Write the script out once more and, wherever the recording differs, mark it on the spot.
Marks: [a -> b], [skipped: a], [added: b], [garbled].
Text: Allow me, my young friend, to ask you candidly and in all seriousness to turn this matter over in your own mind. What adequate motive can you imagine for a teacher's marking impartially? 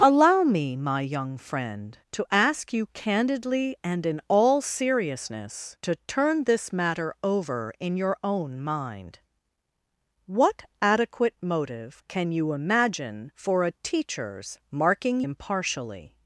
Allow me, my young friend, to ask you candidly and in all seriousness to turn this matter over in your own mind. What adequate motive can you imagine for a teacher's marking impartially?